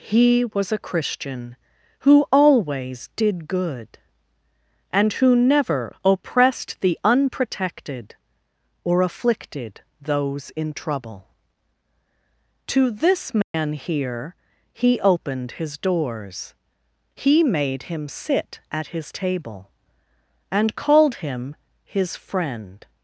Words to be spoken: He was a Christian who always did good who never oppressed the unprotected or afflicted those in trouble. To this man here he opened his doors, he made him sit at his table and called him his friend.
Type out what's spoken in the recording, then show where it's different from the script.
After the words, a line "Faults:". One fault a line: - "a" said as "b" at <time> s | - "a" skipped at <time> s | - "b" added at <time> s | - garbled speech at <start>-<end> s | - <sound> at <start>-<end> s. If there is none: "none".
He was a Christian who always did good and who never oppressed the unprotected or afflicted those in trouble. To this man here he opened his doors, he made him sit at his table and called him his friend.
Faults:
- "and" added at 4.9 s
- dropout at 13.4-13.5 s